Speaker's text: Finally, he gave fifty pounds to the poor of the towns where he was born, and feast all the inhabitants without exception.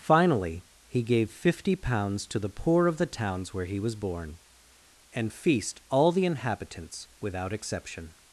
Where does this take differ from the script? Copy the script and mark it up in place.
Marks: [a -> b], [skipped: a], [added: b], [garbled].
Finally, he gave fifty pounds to the poor of the towns where he was born, and feast all the inhabitants without exception.